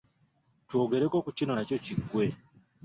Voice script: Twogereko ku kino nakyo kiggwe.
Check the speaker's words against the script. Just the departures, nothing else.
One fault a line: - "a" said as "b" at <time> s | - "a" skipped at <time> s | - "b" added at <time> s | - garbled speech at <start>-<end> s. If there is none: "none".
none